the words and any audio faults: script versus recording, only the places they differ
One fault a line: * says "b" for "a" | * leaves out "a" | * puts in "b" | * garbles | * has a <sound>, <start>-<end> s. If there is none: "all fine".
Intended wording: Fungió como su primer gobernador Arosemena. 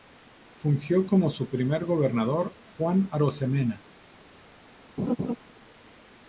* puts in "Juan"
* has a laugh, 5.0-5.4 s